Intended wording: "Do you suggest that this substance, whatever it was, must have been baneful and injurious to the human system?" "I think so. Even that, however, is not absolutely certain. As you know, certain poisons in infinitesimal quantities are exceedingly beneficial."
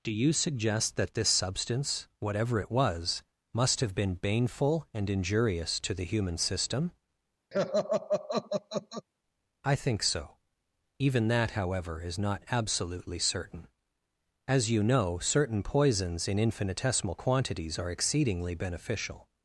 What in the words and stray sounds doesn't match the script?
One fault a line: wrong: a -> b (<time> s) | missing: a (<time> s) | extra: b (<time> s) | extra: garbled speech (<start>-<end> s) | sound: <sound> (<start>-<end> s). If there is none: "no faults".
sound: laugh (7.5-9.1 s)